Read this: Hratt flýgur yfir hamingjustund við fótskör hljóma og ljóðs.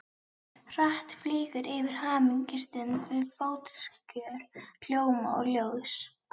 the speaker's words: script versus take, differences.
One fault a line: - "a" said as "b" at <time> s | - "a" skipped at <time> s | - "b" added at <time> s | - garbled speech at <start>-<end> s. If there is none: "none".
none